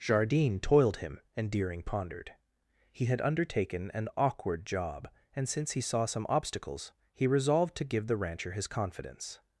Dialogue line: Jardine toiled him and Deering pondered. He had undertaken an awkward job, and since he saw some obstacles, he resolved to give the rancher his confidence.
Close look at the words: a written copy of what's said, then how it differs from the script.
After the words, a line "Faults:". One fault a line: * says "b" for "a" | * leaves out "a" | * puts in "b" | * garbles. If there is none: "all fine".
Jardine toiled him and Deering pondered. He had undertaken an awkward job, and since he saw some obstacles, he resolved to give the rancher his confidence.
Faults:
all fine